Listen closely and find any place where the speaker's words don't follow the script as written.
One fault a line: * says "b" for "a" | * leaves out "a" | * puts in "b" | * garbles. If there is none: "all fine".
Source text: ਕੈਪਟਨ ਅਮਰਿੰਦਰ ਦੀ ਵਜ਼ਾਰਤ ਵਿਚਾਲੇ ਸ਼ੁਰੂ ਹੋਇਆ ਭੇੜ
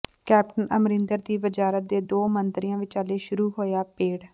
* puts in "ਦੇ ਦੋ ਮੰਤਰੀਆਂ"